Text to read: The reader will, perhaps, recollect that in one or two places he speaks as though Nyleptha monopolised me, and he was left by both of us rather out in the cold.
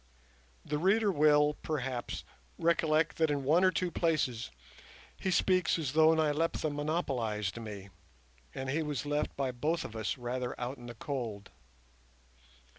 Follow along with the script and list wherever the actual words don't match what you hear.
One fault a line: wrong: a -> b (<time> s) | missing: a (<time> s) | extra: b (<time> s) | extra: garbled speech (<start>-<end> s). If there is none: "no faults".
no faults